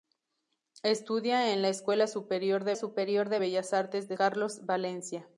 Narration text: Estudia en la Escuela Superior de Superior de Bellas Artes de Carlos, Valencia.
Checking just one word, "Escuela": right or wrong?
right